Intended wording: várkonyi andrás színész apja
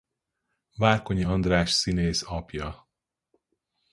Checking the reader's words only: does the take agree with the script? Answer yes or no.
yes